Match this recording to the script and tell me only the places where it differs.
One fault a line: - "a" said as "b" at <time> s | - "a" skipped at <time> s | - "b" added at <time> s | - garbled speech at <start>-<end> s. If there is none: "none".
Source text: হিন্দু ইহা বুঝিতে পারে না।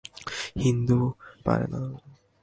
- "ইহা বুঝিতে" skipped at 1.0 s